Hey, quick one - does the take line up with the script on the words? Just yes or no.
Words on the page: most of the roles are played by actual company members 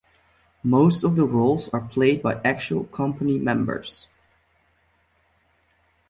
yes